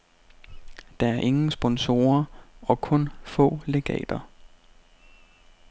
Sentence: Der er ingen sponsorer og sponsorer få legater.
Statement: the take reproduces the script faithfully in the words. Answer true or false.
false